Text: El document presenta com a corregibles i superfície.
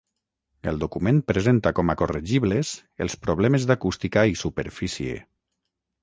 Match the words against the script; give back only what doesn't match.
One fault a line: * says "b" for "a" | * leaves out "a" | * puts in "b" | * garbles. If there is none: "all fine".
* puts in "els problemes d'acústica"